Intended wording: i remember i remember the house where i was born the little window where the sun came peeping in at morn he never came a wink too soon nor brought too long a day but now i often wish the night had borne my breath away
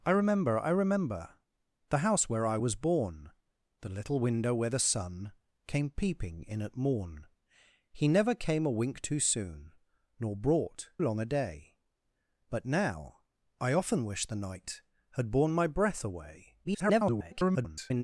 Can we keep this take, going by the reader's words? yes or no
no